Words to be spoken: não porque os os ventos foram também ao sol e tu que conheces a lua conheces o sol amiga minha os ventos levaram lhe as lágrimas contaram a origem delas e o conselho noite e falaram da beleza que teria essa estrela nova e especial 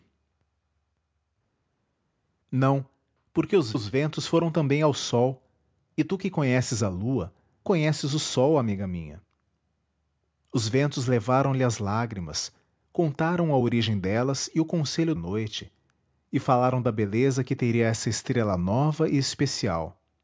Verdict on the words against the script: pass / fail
pass